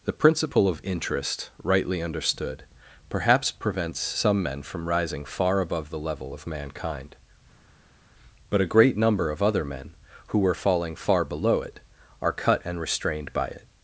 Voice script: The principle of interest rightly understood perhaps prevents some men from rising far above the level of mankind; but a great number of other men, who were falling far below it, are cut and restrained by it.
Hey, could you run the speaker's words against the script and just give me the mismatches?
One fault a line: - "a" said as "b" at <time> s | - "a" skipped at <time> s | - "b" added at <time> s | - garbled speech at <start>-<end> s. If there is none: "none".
none